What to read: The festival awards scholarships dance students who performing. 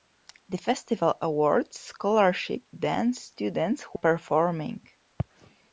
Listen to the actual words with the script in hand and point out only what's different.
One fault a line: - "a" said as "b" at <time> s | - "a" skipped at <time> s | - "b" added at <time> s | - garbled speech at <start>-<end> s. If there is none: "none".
none